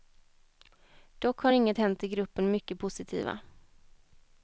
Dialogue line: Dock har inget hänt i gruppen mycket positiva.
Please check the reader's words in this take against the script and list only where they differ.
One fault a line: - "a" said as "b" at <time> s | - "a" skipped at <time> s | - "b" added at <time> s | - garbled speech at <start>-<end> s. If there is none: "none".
none